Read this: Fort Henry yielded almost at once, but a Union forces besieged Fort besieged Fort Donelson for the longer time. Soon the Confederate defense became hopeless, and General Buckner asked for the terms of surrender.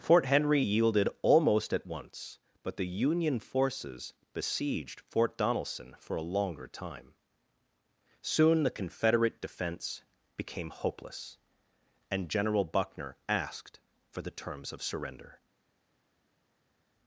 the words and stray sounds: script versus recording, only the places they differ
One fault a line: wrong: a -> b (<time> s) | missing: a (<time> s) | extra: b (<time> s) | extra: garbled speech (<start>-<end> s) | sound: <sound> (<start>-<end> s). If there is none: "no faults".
wrong: a -> the (2.8 s)
missing: besieged Fort (5.4 s)
wrong: the -> a (6.1 s)